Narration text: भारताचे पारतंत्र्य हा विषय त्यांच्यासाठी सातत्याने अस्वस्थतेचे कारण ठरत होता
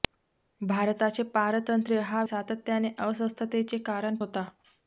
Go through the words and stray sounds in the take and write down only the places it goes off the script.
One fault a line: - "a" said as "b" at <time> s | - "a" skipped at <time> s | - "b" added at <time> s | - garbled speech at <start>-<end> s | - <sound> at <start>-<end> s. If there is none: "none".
- "विषय त्यांच्यासाठी" skipped at 2.2 s
- "ठरत" skipped at 4.2 s